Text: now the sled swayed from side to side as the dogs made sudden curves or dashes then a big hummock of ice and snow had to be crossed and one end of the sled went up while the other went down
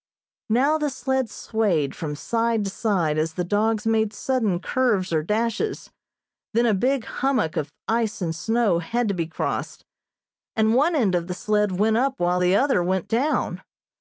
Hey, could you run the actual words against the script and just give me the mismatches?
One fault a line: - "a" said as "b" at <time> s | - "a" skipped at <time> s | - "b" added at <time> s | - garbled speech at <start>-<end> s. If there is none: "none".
none